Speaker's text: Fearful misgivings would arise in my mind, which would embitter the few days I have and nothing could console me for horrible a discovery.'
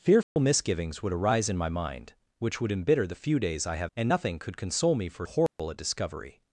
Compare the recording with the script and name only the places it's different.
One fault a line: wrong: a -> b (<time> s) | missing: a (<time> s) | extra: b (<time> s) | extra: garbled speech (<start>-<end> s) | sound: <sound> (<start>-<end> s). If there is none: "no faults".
sound: dropout (0.2-0.4 s)
sound: dropout (5.5-5.6 s)